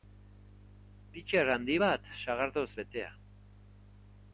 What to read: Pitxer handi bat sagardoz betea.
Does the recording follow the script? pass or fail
pass